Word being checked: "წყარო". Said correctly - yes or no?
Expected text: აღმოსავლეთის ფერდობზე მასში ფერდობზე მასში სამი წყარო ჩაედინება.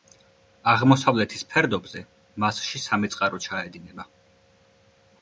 yes